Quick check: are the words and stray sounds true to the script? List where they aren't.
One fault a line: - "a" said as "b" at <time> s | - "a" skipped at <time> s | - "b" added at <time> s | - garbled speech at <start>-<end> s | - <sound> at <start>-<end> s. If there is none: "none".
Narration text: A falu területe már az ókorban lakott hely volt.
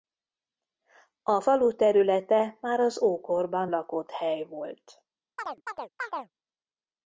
- chirp at 5.4-6.3 s